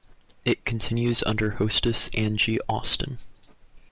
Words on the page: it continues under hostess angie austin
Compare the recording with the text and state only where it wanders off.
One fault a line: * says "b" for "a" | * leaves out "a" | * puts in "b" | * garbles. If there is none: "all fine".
all fine